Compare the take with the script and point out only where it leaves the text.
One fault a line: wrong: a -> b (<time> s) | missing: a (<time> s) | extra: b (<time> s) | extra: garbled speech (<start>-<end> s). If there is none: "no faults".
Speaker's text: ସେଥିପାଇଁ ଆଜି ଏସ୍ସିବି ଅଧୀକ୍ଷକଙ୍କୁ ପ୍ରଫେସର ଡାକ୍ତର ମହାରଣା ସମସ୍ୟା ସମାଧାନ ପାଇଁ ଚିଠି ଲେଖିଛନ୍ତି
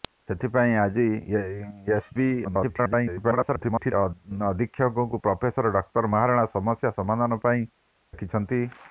extra: garbled speech (2.4-3.9 s)
missing: ଚିଠି (7.6 s)